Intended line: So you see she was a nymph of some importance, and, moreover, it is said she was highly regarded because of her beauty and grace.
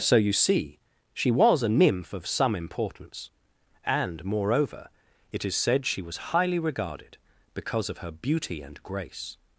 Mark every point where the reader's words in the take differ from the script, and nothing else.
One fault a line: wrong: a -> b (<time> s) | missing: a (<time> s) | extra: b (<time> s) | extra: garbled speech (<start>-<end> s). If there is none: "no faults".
no faults